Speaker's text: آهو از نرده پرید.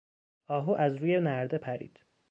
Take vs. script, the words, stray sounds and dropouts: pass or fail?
fail